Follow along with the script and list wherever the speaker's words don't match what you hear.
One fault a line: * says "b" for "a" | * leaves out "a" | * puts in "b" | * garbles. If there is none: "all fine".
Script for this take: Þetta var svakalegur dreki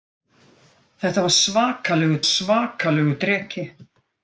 * puts in "svakalegur"